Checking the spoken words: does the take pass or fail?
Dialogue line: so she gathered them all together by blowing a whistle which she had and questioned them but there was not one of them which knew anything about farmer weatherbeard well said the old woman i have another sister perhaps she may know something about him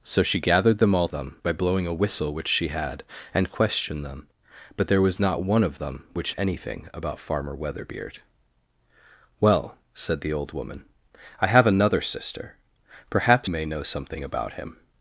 fail